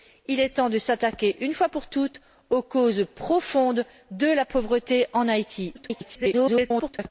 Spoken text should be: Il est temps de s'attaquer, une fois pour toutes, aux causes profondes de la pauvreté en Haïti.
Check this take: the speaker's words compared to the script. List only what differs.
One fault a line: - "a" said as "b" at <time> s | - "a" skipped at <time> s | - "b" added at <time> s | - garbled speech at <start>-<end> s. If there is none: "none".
- garbled speech at 5.7-7.1 s